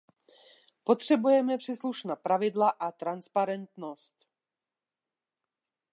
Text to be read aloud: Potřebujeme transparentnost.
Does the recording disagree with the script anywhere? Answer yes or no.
yes